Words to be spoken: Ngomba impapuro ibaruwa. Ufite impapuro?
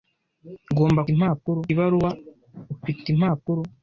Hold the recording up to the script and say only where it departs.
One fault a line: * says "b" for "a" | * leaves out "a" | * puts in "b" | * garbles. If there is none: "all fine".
all fine